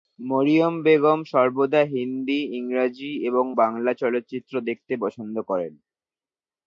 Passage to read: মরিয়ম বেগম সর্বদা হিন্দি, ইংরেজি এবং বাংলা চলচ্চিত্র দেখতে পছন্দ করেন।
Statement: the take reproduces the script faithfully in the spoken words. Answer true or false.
true